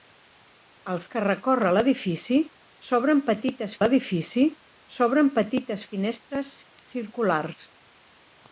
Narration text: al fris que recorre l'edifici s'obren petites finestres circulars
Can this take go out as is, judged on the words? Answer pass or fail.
fail